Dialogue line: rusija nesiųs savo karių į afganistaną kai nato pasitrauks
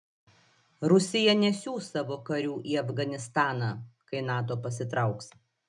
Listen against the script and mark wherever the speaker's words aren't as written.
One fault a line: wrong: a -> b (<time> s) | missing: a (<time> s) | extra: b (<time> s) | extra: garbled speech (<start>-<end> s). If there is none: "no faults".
no faults